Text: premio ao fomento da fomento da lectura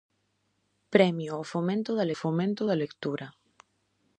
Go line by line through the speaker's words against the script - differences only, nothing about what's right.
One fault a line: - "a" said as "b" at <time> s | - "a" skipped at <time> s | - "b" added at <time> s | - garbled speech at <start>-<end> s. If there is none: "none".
none